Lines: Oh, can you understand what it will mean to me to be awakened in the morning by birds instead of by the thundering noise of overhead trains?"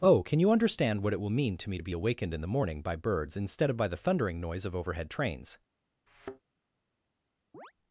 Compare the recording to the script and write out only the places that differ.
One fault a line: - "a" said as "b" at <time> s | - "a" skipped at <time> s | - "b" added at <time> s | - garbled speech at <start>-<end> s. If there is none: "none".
none